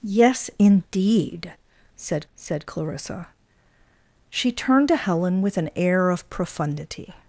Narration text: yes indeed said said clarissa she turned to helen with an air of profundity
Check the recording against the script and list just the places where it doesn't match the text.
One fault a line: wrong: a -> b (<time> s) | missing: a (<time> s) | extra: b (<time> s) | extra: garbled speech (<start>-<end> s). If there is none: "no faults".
no faults